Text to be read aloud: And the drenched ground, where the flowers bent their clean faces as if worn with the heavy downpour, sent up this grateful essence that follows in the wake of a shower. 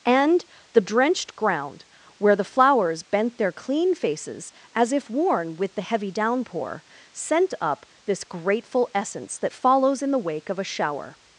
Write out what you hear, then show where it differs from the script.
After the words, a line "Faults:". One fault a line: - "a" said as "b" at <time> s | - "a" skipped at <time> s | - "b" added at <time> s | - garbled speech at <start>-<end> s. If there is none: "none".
And the drenched ground, where the flowers bent their clean faces as if worn with the heavy downpour, sent up this grateful essence that follows in the wake of a shower.
Faults:
none